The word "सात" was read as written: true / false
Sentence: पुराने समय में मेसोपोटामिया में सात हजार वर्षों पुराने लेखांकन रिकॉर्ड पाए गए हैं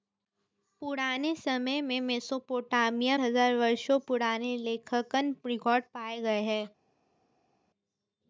false